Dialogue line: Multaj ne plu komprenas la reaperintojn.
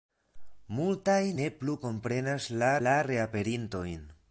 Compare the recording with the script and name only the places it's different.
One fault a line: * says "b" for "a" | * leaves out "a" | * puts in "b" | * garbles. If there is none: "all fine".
* puts in "la"